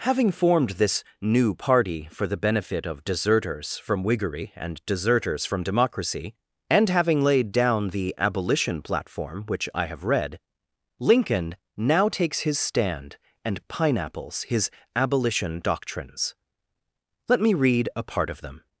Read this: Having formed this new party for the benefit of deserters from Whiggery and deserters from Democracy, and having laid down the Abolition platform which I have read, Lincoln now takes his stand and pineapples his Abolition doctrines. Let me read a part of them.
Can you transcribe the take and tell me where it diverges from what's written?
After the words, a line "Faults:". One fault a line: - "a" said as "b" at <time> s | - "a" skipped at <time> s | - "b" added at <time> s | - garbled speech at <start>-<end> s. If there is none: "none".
Having formed this new party for the benefit of deserters from Whiggery and deserters from Democracy, and having laid down the Abolition platform which I have read, Lincoln now takes his stand and pineapples his Abolition doctrines. Let me read a part of them.
Faults:
none